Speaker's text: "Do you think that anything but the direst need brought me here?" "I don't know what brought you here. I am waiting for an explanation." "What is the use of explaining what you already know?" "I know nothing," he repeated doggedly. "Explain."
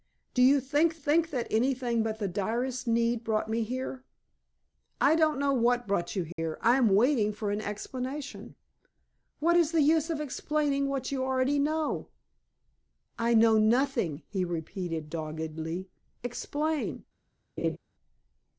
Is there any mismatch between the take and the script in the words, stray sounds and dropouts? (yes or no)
yes